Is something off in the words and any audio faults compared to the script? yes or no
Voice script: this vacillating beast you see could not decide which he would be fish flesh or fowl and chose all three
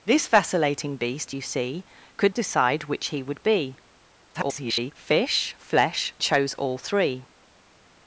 yes